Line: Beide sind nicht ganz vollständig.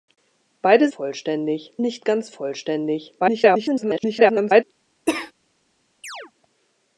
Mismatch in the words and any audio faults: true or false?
true